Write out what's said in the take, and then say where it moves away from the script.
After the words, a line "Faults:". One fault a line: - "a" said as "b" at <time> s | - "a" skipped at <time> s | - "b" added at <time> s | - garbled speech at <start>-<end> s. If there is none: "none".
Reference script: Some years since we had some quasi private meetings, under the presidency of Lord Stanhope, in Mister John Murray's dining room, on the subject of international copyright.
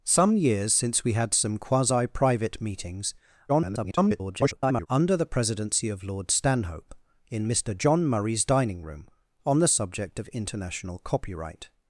Some years since we had some quasi private meetings, [garbled] under the presidency of Lord Stanhope, in Mister John Murray's dining room, on the subject of international copyright.
Faults:
- garbled speech at 3.5-4.9 s